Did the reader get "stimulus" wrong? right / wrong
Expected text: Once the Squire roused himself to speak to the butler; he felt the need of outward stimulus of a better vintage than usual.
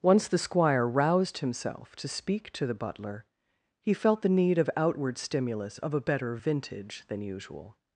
right